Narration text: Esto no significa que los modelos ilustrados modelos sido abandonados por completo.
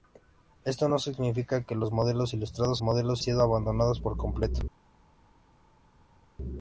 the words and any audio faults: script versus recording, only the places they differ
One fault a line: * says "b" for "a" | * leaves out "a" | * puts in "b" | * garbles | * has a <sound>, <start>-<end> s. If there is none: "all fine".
all fine